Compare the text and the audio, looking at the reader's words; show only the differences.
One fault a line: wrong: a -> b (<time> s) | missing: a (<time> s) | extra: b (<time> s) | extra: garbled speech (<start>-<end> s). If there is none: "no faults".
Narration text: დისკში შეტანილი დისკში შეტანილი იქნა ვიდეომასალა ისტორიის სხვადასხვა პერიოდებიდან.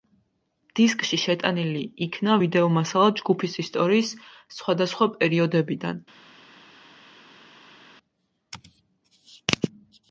missing: დისკში შეტანილი (1.8 s)
extra: ჯგუფის (3.2 s)